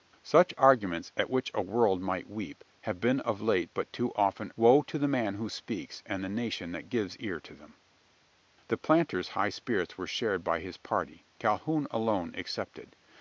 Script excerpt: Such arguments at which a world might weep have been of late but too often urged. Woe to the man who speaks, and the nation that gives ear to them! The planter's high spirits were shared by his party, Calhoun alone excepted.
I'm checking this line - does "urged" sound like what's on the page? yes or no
no